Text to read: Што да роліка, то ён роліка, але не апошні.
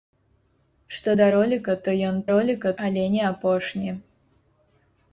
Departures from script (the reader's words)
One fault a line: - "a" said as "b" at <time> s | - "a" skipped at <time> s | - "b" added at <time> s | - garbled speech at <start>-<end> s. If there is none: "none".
none